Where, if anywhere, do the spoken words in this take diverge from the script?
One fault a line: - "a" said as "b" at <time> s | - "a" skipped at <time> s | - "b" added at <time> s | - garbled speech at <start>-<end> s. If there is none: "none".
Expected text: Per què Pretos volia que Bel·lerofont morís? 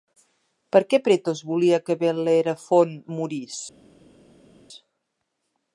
none